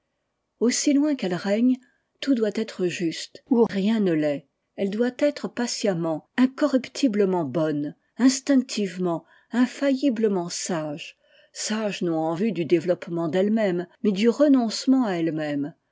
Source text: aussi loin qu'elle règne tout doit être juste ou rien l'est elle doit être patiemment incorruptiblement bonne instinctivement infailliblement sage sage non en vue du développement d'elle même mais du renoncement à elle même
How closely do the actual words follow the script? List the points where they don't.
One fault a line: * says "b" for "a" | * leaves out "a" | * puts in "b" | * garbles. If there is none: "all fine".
* puts in "ne"